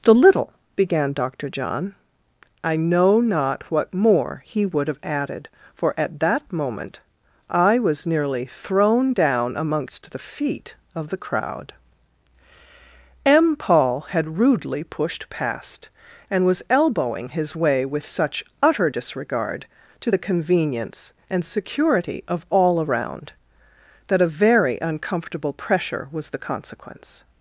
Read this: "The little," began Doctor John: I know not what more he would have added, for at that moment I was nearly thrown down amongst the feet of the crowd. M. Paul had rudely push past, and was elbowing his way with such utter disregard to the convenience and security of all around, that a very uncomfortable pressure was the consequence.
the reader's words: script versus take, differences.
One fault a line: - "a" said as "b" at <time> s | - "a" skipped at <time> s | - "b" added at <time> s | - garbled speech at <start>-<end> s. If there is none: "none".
- "push" said as "pushed" at 14.8 s